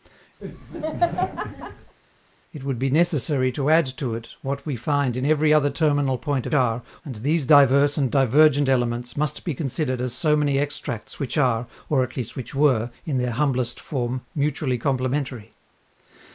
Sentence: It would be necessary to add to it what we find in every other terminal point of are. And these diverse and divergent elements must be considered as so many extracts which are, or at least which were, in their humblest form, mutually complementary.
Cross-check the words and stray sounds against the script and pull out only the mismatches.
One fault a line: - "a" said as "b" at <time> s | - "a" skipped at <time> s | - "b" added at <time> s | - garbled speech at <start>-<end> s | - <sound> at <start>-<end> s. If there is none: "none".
- laugh at 0.4-1.9 s